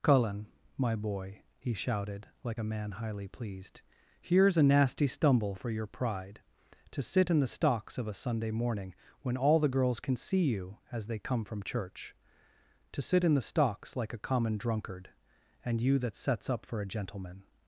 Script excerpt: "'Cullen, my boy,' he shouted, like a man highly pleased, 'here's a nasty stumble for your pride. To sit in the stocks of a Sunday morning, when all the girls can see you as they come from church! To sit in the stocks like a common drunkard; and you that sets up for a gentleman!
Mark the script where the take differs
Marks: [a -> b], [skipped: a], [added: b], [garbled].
"'Cullen, my boy,' he shouted, like a man highly pleased, 'here's a nasty stumble for your pride. To sit in the stocks of a Sunday morning, when all the girls can see you as they come from church! To sit in the stocks like a common drunkard; and you that sets up for a gentleman!